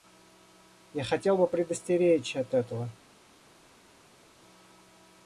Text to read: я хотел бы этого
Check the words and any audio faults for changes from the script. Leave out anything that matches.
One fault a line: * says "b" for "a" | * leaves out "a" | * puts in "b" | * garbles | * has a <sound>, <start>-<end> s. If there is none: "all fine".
* puts in "предостеречь от"